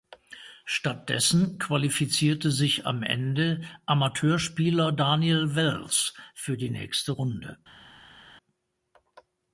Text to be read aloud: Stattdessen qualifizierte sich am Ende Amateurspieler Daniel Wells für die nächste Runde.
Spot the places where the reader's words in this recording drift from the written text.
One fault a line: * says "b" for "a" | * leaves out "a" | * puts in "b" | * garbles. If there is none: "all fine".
all fine